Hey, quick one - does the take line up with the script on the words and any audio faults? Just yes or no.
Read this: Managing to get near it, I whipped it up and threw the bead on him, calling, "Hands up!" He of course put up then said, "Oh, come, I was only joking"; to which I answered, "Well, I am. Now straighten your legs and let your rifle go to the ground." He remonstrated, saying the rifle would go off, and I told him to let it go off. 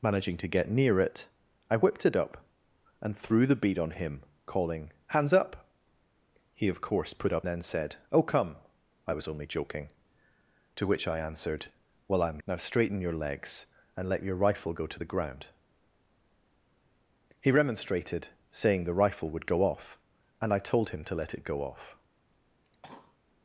no